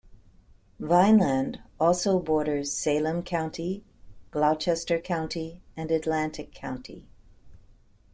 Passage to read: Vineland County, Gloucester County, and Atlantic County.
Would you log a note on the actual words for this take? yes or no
yes